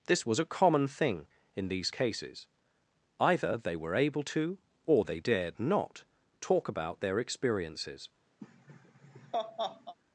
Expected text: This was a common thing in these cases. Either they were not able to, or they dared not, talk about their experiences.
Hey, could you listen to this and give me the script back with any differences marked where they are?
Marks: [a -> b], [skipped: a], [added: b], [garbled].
This was a common thing in these cases. Either they were [skipped: not] able to, or they dared not, talk about their experiences.